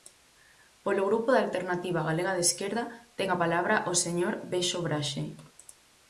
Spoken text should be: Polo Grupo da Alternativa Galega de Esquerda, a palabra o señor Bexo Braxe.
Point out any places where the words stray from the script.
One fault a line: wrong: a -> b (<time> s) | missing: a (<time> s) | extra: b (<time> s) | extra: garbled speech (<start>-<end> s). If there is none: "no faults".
extra: ten (3.2 s)